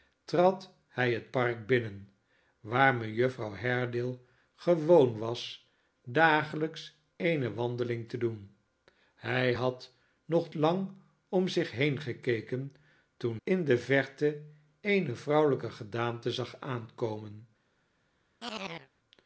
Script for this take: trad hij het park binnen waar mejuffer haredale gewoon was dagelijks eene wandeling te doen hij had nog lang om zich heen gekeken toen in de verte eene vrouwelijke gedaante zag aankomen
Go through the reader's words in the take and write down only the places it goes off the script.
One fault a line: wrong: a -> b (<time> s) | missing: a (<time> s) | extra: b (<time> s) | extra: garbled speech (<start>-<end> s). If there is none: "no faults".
no faults